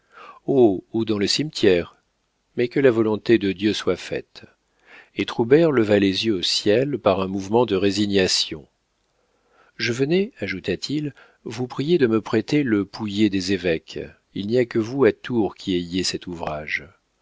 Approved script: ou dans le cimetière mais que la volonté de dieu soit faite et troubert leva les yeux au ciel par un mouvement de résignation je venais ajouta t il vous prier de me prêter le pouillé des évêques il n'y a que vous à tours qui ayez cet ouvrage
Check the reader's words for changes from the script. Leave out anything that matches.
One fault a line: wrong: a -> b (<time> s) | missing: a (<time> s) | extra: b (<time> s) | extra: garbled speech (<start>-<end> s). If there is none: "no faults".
no faults